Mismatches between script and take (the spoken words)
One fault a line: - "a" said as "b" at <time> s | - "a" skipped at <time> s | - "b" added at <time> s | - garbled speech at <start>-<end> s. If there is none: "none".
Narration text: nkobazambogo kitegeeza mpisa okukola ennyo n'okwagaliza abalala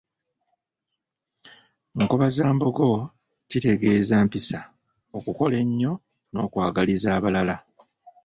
none